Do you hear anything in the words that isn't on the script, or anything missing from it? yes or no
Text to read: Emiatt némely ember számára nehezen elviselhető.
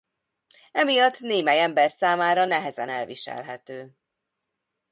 no